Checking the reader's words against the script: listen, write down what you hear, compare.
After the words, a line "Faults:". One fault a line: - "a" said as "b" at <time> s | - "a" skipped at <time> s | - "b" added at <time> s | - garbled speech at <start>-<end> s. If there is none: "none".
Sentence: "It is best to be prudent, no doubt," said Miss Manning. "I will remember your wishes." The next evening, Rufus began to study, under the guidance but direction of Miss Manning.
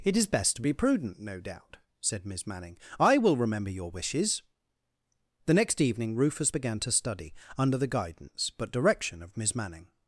"It is best to be prudent, no doubt," said Miss Manning. "I will remember your wishes." The next evening, Rufus began to study, under the guidance but direction of Miss Manning.
Faults:
none